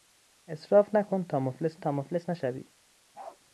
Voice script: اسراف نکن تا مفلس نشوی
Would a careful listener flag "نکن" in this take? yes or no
no